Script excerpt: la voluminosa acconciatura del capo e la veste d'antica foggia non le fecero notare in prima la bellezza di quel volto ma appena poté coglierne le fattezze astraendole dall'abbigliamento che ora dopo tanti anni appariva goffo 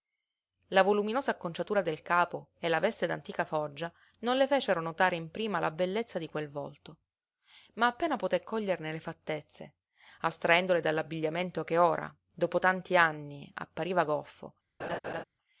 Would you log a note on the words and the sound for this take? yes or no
yes